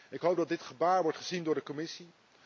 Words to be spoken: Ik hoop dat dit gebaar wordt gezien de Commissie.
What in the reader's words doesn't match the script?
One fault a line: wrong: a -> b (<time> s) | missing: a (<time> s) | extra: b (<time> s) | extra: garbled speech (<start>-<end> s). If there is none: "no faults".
extra: door (1.4 s)